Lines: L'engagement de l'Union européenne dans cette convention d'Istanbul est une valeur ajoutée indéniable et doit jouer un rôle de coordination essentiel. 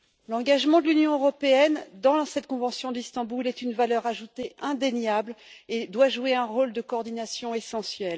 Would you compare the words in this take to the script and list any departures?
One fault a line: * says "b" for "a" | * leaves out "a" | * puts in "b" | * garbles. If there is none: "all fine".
all fine